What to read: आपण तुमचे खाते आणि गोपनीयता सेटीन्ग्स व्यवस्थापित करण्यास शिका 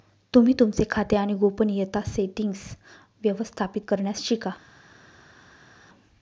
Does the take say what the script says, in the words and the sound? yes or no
no